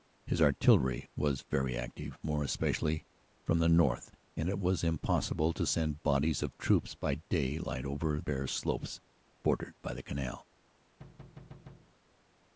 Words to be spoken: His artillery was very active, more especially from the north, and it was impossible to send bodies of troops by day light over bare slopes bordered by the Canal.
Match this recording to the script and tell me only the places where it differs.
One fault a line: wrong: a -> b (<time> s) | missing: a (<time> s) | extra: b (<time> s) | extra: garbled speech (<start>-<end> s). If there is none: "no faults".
no faults